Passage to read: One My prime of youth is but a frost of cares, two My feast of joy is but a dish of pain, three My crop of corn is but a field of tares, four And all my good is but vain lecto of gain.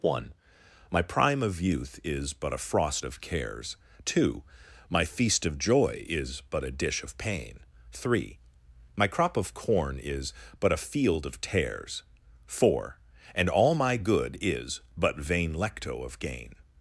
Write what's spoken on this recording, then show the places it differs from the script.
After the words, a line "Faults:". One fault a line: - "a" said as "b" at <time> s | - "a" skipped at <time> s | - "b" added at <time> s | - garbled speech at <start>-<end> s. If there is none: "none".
One My prime of youth is but a frost of cares, two My feast of joy is but a dish of pain, three My crop of corn is but a field of tares, four And all my good is but vain lecto of gain.
Faults:
none